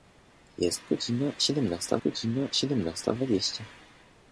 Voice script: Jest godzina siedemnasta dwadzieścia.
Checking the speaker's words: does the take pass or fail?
fail